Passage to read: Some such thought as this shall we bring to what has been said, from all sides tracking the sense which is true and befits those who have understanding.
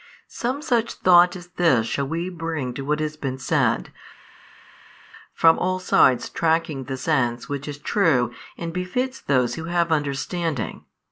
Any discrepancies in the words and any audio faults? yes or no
no